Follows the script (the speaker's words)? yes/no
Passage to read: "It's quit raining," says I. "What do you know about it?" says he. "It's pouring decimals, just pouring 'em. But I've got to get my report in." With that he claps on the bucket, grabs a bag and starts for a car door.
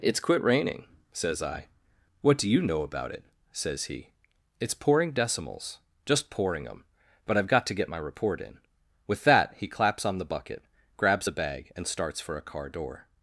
yes